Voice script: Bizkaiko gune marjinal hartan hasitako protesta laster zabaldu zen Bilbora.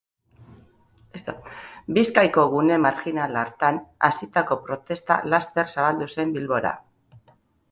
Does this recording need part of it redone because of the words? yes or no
no